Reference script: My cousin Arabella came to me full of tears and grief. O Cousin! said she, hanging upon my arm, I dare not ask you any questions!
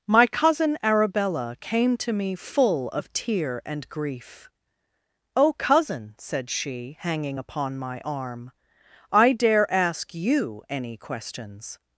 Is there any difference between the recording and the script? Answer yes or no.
yes